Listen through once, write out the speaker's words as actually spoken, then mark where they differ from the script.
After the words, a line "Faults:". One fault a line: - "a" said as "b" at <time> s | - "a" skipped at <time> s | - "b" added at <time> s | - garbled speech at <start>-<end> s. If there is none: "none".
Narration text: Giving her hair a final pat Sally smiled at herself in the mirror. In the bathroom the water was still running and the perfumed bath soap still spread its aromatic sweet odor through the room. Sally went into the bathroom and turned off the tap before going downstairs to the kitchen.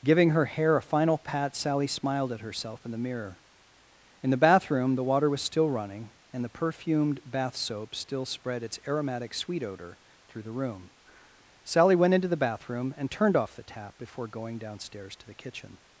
Giving her hair a final pat Sally smiled at herself in the mirror. In the bathroom the water was still running and the perfumed bath soap still spread its aromatic sweet odor through the room. Sally went into the bathroom and turned off the tap before going downstairs to the kitchen.
Faults:
none